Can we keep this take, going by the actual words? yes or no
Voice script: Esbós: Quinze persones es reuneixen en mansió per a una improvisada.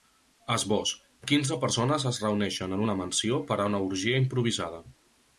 no